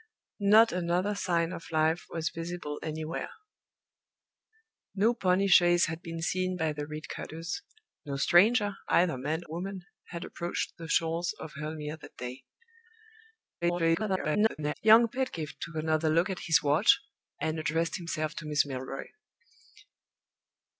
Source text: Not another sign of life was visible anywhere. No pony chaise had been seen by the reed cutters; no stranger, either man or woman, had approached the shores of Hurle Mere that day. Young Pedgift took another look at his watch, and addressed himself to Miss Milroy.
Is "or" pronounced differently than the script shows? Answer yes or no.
yes